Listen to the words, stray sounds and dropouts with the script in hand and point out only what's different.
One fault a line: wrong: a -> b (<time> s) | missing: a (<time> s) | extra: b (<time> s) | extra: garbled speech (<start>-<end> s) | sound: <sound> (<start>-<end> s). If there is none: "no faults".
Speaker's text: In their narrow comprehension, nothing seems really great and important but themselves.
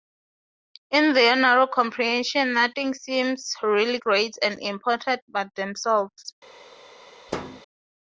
sound: thud (7.3-7.6 s)